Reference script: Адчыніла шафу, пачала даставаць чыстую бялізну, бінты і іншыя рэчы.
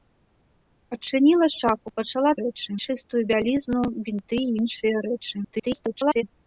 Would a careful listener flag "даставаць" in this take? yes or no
yes